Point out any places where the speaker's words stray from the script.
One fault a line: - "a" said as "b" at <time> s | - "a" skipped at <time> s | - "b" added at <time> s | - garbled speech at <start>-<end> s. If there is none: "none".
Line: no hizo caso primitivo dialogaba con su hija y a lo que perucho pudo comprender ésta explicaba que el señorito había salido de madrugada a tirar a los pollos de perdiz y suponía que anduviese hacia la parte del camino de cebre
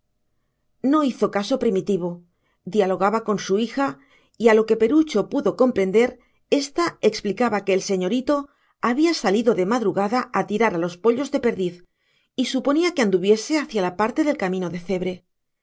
none